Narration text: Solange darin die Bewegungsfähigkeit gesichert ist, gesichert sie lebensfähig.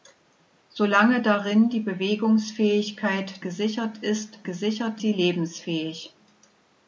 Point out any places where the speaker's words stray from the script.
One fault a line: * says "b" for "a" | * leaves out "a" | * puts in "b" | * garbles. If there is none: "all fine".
all fine